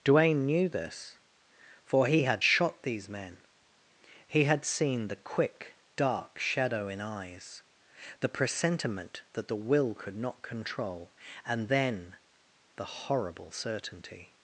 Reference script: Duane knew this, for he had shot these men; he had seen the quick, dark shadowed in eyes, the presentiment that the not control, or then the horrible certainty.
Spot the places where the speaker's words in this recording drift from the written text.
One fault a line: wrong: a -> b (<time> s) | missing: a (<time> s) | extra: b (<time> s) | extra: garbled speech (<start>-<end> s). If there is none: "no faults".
wrong: shadowed -> shadow (6.4 s)
extra: will could (9.5 s)
wrong: or -> and (11.4 s)